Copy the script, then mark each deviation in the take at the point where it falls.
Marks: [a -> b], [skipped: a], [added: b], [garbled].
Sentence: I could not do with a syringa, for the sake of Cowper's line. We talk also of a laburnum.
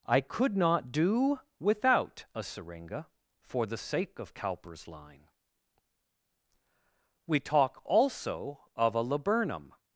I could not do [with -> without] a syringa, for the sake of Cowper's line. We talk also of a laburnum.